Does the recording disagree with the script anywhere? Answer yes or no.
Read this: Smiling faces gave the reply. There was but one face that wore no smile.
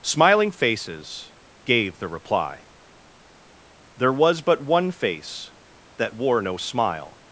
no